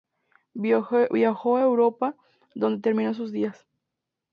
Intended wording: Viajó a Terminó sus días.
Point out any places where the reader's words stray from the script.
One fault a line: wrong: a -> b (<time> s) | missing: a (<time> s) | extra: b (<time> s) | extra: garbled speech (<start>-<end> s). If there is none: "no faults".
extra: Europa donde (1.6 s)